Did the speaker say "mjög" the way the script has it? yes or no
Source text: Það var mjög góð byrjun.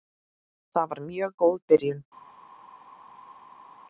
yes